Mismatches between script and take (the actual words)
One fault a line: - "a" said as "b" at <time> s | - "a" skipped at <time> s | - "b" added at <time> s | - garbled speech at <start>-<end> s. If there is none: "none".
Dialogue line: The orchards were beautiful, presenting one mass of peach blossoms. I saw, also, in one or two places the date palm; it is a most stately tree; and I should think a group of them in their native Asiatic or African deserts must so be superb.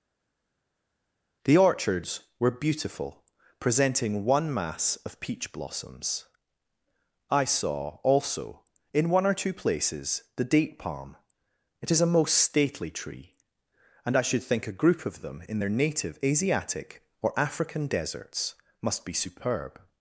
- "so" skipped at 19.0 s